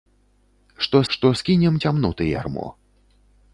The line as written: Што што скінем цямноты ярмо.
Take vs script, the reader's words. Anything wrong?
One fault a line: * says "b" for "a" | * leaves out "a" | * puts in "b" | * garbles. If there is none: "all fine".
all fine